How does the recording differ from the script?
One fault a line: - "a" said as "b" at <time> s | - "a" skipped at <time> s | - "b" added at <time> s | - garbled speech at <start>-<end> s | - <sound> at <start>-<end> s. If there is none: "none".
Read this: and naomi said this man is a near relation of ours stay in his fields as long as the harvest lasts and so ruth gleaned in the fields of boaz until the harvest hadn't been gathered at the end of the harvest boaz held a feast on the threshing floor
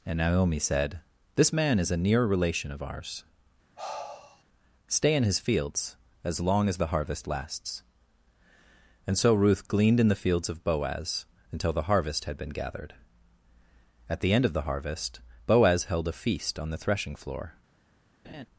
- sigh at 3.8-4.4 s
- "hadn't" said as "had" at 12.2 s
- laugh at 18.2-18.5 s